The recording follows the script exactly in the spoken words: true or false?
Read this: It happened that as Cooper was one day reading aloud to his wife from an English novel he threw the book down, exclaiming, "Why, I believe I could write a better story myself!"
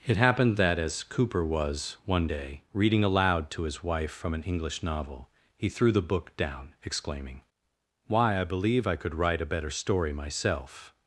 true